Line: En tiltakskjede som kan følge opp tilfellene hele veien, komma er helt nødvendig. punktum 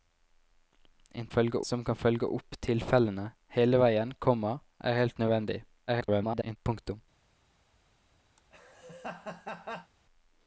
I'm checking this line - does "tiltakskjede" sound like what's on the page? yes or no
no